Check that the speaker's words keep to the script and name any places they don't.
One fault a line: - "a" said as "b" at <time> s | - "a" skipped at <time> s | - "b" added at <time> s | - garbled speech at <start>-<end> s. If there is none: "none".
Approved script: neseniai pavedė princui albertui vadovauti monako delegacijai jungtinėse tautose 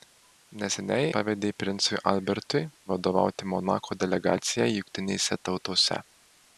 none